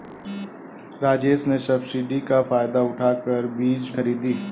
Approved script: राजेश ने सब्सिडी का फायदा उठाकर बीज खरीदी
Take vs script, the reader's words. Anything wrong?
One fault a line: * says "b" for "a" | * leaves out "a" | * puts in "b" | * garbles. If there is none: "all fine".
all fine